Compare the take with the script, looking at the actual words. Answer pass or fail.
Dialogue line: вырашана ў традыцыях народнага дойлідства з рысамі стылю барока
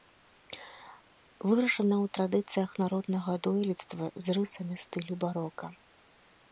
pass